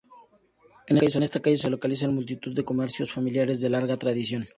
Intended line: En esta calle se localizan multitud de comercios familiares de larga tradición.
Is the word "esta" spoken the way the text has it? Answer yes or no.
no